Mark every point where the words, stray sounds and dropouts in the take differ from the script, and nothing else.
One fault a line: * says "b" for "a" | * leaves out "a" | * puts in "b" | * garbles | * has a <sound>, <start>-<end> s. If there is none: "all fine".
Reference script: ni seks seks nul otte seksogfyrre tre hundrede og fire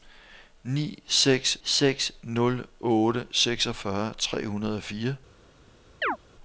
* has a chirp, 6.0-6.2 s